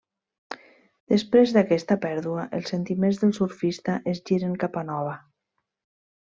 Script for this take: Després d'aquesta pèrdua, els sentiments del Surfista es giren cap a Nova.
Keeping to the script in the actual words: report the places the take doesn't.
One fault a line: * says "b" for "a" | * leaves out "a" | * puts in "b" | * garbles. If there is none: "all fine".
all fine